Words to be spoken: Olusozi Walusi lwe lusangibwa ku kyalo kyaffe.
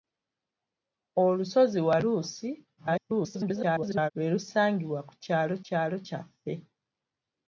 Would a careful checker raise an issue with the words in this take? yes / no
yes